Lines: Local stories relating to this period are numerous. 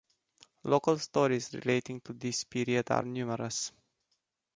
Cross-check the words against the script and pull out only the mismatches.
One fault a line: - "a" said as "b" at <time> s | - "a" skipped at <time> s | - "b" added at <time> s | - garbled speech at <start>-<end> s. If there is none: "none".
none